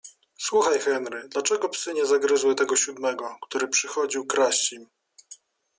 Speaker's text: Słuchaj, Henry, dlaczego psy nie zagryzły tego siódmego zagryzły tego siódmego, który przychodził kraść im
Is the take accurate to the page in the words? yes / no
no